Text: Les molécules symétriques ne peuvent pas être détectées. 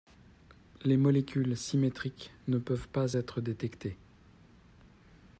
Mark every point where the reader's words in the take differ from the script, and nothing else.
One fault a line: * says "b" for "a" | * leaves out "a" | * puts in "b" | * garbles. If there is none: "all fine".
all fine